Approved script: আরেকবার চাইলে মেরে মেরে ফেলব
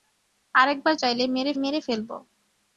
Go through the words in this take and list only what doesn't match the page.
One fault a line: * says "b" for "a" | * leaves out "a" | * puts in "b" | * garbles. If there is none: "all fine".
all fine